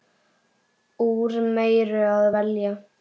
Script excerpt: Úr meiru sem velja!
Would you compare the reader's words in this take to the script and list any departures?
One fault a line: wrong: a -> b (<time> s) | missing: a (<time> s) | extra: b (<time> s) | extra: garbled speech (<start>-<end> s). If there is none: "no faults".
wrong: sem -> að (2.2 s)